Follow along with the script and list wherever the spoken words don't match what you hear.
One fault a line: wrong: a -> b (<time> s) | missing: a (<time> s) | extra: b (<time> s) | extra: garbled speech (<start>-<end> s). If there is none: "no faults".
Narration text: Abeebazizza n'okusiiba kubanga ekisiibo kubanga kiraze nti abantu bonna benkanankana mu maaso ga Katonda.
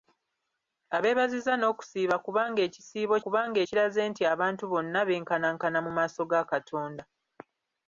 no faults